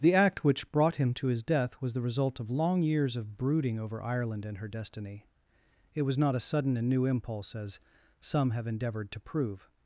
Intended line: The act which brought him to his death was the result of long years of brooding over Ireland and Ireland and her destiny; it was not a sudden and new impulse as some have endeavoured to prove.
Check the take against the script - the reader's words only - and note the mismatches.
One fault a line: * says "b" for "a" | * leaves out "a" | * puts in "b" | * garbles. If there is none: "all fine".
* leaves out "Ireland and"